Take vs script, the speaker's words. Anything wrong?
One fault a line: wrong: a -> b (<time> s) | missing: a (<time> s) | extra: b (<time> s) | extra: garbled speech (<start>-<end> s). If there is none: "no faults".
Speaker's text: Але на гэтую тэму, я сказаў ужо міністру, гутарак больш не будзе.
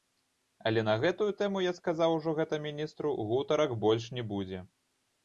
extra: гэта (2.4 s)